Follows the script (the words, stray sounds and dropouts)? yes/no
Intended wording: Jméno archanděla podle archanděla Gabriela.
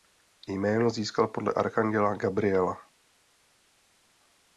no